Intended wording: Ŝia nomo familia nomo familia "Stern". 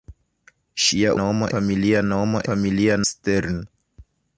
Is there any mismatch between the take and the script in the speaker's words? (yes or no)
no